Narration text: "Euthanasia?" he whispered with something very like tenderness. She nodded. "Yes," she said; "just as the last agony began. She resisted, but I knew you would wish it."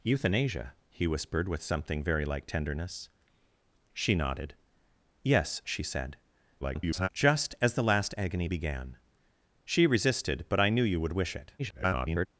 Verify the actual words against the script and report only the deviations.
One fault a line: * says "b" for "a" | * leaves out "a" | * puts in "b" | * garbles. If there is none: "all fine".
* garbles
* garbles